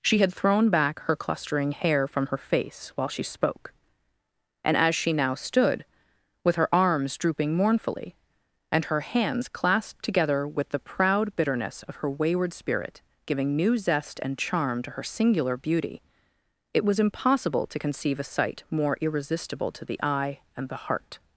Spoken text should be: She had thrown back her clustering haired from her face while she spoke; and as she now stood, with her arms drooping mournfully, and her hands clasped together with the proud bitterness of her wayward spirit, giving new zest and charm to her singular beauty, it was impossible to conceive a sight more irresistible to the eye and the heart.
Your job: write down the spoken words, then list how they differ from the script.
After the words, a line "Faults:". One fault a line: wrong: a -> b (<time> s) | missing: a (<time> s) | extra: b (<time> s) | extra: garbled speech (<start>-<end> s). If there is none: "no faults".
She had thrown back her clustering hair from her face while she spoke; and as she now stood, with her arms drooping mournfully, and her hands clasped together with the proud bitterness of her wayward spirit, giving new zest and charm to her singular beauty, it was impossible to conceive a sight more irresistible to the eye and the heart.
Faults:
wrong: haired -> hair (1.7 s)